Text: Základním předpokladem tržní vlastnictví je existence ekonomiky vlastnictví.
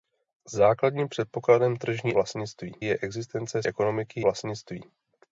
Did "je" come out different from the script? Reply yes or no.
no